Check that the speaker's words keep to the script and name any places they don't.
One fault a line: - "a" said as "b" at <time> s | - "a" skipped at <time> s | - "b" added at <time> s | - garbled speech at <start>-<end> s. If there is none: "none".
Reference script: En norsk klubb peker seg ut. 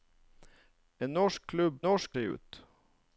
- "peker" said as "norsk" at 1.9 s